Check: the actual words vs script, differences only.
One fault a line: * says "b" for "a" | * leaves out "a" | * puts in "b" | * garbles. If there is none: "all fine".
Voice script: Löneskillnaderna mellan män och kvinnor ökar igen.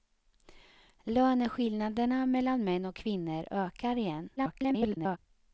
* garbles